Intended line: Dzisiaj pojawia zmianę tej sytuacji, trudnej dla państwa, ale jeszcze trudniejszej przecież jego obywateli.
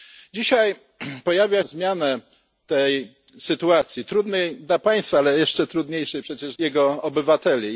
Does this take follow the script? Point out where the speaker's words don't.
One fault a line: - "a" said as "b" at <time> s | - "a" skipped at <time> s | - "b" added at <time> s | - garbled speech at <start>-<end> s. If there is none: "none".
none